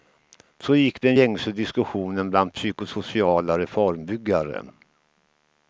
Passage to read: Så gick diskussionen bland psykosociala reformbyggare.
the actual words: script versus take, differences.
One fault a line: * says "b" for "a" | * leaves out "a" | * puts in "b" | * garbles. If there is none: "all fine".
* puts in "den gängse"